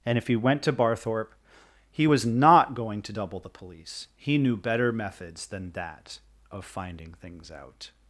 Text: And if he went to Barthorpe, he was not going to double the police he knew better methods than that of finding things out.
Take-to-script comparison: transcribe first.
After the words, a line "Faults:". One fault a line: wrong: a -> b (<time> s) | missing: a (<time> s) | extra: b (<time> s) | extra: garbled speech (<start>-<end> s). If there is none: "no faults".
And if he went to Barthorpe, he was not going to double the police he knew better methods than that of finding things out.
Faults:
no faults